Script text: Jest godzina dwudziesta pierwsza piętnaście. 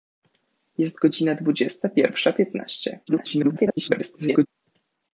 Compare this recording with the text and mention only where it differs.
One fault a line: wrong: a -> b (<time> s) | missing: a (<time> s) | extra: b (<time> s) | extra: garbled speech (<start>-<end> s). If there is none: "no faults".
extra: garbled speech (3.1-4.5 s)